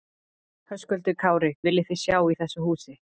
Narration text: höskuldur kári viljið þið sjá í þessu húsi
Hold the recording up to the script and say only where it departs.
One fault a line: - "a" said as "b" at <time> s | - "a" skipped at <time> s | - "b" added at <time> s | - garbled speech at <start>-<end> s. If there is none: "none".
none